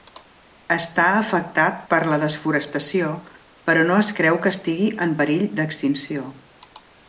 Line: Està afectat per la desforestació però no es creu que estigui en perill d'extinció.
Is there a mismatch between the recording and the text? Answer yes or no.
no